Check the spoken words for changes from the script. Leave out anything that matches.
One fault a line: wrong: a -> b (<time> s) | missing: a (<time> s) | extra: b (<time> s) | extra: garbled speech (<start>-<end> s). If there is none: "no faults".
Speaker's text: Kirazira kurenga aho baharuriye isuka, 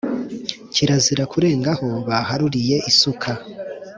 no faults